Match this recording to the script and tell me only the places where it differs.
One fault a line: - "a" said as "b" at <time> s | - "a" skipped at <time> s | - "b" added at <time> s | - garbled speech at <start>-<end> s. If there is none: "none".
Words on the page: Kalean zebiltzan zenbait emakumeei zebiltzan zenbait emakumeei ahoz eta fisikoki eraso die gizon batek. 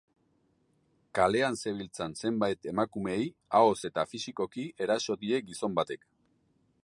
- "zebiltzan zenbait emakumeei" skipped at 3.3 s